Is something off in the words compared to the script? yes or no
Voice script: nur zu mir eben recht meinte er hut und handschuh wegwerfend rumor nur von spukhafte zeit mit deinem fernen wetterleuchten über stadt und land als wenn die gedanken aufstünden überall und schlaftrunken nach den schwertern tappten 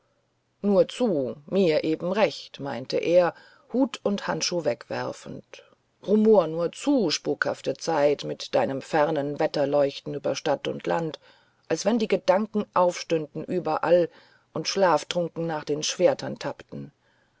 yes